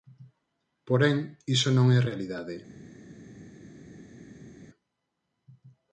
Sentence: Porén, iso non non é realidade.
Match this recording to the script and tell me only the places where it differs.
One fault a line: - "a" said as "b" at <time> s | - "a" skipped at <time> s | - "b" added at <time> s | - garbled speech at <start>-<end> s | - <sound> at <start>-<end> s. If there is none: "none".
- "non" skipped at 1.9 s